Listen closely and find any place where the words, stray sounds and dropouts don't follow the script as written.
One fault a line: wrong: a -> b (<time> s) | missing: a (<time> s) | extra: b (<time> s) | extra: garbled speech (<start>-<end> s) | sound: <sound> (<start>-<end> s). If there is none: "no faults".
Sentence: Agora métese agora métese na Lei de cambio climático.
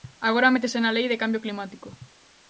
missing: agora métese (0.8 s)